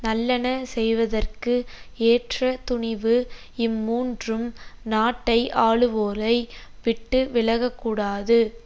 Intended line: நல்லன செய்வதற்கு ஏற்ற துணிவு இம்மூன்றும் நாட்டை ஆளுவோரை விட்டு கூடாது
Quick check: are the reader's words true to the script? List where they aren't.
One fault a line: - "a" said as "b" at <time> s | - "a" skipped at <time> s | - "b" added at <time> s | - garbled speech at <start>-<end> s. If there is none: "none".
- "விலக" added at 7.3 s